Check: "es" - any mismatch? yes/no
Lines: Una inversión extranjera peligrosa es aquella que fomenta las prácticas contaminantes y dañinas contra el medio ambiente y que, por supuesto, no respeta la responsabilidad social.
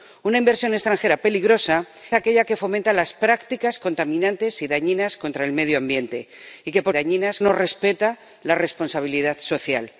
yes